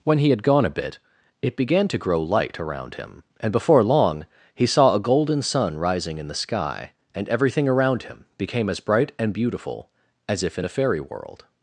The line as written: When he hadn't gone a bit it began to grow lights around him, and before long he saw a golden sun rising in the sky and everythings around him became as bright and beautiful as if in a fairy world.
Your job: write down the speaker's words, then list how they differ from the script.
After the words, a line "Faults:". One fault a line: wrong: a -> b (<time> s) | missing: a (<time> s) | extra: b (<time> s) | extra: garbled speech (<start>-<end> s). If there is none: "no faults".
When he had gone a bit it began to grow light around him, and before long he saw a golden sun rising in the sky and everything around him became as bright and beautiful as if in a fairy world.
Faults:
wrong: hadn't -> had (0.3 s)
wrong: lights -> light (2.2 s)
wrong: everythings -> everything (7.3 s)